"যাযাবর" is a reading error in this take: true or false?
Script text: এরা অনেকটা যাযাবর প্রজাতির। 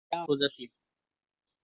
true